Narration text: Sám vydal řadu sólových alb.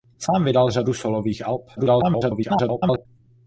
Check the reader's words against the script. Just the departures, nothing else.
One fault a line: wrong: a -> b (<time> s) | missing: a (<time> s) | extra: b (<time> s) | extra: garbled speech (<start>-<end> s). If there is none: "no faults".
extra: garbled speech (1.8-3.1 s)